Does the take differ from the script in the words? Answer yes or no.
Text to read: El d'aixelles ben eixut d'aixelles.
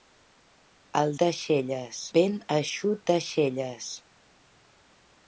no